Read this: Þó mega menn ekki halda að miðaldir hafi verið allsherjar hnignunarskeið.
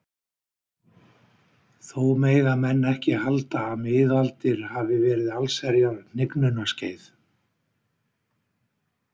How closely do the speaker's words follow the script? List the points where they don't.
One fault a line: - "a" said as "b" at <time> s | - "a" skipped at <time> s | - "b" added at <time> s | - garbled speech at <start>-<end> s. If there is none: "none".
none